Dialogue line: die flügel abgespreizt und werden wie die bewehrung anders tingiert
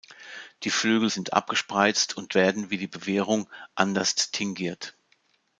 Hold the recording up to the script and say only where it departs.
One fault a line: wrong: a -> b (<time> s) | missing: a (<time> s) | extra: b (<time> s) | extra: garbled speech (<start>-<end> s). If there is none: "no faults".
extra: sind (1.1 s)